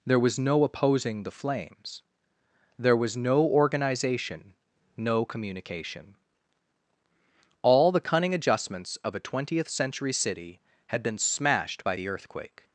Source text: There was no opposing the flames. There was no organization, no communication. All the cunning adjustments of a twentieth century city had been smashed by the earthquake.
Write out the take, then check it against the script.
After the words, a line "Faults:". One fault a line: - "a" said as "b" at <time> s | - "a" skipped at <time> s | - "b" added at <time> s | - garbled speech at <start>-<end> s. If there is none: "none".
There was no opposing the flames. There was no organization, no communication. All the cunning adjustments of a twentieth century city had been smashed by the earthquake.
Faults:
none